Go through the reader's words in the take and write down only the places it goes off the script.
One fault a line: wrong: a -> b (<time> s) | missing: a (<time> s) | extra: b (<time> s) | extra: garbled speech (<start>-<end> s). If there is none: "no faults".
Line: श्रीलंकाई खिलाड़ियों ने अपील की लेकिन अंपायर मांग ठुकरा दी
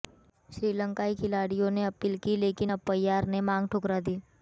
extra: ने (3.3 s)